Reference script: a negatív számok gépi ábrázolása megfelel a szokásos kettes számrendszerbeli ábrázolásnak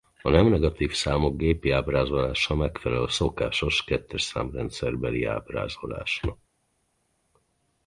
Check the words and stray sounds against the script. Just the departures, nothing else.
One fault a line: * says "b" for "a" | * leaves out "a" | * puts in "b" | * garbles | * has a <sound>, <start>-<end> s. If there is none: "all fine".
* puts in "nem"